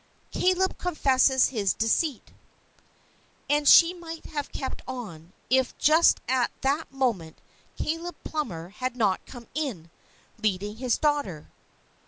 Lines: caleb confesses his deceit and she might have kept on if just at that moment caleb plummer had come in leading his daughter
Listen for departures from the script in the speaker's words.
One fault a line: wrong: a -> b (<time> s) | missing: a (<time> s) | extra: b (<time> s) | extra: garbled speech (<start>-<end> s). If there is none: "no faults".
extra: not (8.9 s)